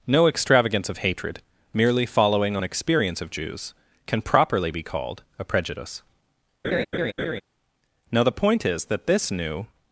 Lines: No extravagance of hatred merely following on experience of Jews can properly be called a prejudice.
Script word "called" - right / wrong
right